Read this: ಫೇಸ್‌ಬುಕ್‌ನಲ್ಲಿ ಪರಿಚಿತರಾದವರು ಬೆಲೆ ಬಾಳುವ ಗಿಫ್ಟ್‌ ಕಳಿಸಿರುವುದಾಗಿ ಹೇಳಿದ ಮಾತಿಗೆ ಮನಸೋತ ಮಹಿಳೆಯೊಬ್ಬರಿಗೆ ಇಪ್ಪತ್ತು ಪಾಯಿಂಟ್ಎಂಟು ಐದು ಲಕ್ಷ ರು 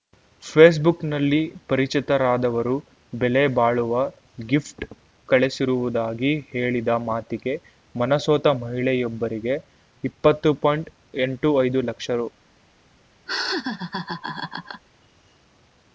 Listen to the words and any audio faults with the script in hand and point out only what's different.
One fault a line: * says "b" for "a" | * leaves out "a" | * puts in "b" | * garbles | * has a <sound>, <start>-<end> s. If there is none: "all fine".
* has a laugh, 13.3-14.8 s